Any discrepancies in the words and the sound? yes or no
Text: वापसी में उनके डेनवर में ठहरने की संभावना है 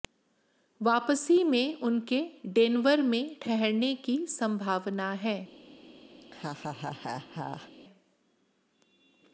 yes